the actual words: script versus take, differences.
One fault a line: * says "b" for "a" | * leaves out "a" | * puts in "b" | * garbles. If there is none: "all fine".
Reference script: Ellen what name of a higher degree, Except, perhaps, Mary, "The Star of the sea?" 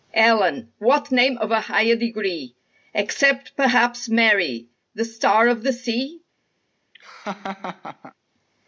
all fine